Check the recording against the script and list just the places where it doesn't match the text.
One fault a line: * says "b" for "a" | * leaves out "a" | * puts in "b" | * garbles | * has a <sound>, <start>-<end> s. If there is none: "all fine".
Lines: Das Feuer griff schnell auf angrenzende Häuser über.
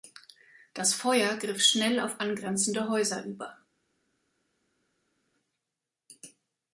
all fine